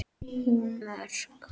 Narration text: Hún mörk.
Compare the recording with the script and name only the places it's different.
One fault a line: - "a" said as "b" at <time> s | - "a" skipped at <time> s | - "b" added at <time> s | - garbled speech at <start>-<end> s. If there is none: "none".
none